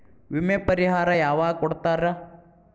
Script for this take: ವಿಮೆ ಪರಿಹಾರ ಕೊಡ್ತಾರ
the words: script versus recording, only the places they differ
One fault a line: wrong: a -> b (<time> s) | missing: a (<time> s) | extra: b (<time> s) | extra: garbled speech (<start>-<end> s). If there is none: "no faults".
extra: ಯಾವಾಗ್ (1.2 s)